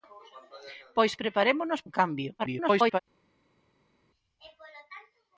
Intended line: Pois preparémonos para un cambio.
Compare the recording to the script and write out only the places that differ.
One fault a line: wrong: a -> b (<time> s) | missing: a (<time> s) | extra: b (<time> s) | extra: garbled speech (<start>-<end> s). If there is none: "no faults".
missing: para (1.8 s)
extra: garbled speech (2.4-3.0 s)